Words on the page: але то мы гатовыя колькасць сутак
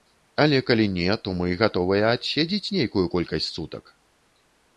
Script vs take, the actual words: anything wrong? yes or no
yes